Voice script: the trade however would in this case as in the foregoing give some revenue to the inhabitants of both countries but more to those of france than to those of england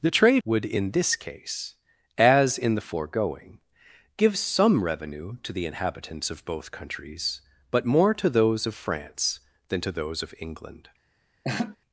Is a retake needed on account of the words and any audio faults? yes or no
yes